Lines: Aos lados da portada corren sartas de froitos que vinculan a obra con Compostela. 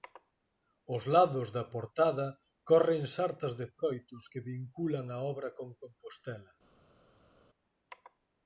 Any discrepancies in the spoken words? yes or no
no